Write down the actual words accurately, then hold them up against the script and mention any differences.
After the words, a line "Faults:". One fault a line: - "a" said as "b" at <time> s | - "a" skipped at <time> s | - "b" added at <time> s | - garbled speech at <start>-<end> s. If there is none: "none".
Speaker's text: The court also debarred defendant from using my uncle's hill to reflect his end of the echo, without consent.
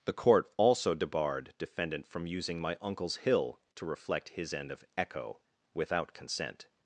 The court also debarred defendant from using my uncle's hill to reflect his end of echo, without consent.
Faults:
- "the" skipped at 4.8 s